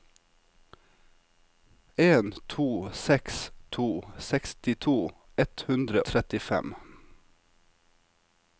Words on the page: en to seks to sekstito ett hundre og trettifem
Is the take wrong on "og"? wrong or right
wrong